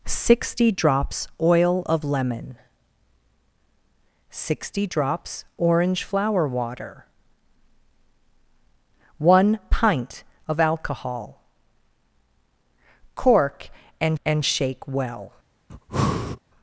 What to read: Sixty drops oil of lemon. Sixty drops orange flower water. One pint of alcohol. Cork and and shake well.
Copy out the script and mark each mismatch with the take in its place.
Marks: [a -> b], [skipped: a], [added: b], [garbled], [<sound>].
Sixty drops oil of lemon. Sixty drops orange flower water. One pint of alcohol. Cork and and shake well. [breath]